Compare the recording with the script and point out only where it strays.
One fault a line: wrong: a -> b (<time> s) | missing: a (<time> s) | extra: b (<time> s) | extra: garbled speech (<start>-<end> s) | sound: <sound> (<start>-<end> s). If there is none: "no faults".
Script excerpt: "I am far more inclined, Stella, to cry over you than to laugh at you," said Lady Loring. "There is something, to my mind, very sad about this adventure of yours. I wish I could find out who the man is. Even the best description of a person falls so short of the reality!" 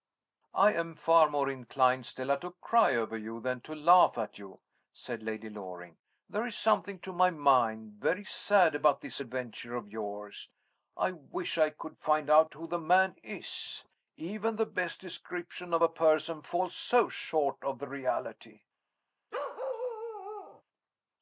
sound: bark (19.3-20.6 s)